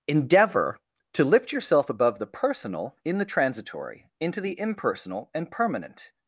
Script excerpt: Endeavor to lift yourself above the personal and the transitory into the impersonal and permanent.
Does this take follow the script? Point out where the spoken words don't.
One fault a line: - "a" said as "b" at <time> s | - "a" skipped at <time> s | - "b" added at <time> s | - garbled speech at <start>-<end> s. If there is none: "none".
- "and" said as "in" at 3.0 s